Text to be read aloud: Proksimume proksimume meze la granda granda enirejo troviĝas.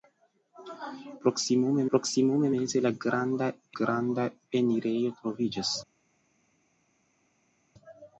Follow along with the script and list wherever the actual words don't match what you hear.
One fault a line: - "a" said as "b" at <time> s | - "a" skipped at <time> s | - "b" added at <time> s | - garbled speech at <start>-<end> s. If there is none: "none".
none